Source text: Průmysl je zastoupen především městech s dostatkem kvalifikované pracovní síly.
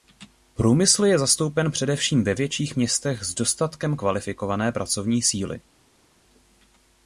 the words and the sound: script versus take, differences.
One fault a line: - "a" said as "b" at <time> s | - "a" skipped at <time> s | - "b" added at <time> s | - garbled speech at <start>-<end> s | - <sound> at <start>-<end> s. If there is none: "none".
- "ve větších" added at 2.2 s